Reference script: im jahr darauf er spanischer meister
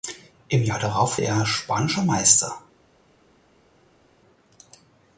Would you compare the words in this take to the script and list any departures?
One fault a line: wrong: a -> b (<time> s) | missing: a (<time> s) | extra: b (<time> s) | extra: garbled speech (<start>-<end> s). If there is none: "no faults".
no faults